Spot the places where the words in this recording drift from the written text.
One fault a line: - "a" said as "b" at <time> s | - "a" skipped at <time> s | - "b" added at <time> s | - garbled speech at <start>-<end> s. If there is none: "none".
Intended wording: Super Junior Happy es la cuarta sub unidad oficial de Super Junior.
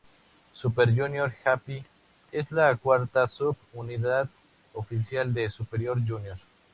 none